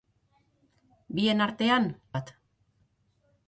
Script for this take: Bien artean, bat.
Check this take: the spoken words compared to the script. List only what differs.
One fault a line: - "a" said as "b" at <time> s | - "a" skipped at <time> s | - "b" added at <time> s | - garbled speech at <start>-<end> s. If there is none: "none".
none